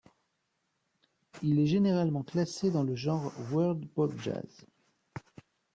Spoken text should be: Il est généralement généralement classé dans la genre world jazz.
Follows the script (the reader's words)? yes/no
no